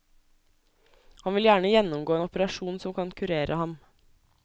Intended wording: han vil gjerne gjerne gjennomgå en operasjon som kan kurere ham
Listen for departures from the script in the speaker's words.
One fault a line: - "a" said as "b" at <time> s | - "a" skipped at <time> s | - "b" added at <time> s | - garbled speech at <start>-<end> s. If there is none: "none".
- "gjerne" skipped at 1.7 s